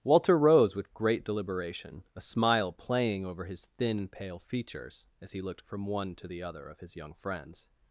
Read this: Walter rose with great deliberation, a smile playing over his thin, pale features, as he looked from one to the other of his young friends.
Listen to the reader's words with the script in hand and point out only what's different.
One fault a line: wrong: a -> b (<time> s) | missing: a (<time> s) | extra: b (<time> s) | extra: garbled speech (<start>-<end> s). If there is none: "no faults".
no faults